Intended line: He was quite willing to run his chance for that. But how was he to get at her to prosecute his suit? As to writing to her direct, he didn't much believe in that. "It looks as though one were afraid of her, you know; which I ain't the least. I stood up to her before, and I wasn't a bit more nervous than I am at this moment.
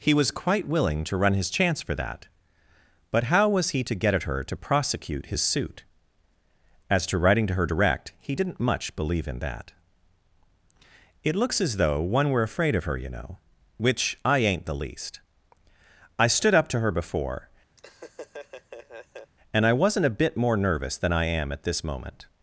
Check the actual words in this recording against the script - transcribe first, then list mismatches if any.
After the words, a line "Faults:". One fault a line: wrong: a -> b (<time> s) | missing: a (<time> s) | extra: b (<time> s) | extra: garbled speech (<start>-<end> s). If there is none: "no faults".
He was quite willing to run his chance for that. But how was he to get at her to prosecute his suit? As to writing to her direct, he didn't much believe in that. "It looks as though one were afraid of her, you know; which I ain't the least. I stood up to her before, and I wasn't a bit more nervous than I am at this moment.
Faults:
no faults